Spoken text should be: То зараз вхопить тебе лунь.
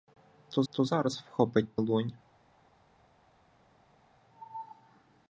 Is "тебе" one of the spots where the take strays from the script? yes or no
yes